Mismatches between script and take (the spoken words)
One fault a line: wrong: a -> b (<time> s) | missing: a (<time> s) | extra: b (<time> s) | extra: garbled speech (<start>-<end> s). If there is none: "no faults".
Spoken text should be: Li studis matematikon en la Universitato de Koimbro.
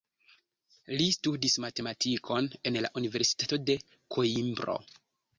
no faults